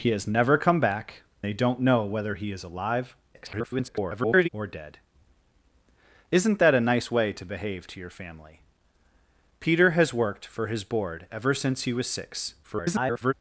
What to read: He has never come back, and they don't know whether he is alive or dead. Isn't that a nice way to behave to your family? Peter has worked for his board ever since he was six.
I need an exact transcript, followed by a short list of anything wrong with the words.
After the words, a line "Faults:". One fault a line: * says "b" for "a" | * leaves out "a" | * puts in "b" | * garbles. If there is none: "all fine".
He has never come back, they don't know whether he is alive [garbled] or dead. Isn't that a nice way to behave to your family? Peter has worked for his board ever since he was six. [garbled]
Faults:
* leaves out "and"
* garbles
* garbles